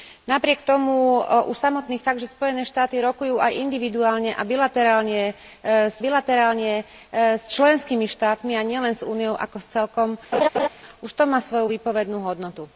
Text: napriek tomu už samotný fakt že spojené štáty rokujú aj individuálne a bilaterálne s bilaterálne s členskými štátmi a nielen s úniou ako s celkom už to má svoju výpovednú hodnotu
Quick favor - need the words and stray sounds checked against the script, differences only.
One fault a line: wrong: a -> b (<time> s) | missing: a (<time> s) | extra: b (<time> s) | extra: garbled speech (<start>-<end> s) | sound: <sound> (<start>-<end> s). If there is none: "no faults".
sound: laugh (10.3-10.7 s)